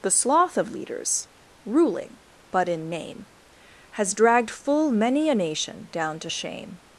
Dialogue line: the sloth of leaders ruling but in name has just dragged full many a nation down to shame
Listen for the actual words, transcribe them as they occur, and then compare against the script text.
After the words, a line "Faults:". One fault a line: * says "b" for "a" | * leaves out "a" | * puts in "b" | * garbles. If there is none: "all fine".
the sloth of leaders ruling but in name has dragged full many a nation down to shame
Faults:
* leaves out "just"